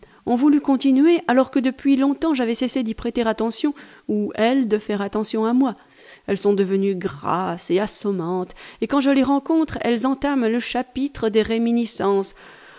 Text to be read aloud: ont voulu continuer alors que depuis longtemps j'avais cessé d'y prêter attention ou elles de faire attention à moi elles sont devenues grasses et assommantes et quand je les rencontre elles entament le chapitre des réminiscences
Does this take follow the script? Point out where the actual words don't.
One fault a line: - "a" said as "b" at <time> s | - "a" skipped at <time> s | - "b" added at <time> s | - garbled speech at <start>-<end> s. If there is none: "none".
none